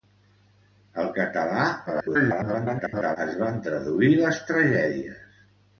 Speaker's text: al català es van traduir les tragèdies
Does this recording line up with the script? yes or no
no